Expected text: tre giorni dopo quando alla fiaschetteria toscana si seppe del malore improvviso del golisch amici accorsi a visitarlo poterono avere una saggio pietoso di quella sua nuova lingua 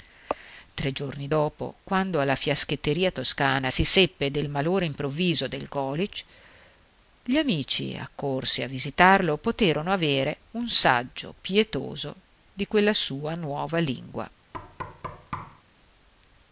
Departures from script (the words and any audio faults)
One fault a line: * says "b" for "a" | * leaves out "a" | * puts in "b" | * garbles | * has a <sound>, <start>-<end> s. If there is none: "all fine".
* puts in "gli"
* says "un" for "una"
* has a thud, 14.5-15.6 s